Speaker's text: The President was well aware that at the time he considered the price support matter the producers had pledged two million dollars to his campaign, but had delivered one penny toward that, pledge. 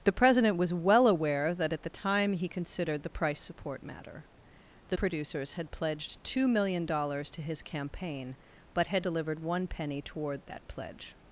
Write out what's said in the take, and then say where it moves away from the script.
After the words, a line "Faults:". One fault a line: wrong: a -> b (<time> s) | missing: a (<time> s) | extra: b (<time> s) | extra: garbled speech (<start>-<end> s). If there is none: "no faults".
The President was well aware that at the time he considered the price support matter the producers had pledged two million dollars to his campaign, but had delivered one penny toward that, pledge.
Faults:
no faults